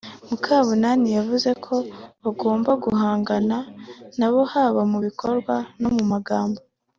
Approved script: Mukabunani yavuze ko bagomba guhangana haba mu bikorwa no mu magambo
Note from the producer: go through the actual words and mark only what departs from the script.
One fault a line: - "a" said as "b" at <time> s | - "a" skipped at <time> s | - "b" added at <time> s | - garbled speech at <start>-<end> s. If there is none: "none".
- "nabo" added at 4.2 s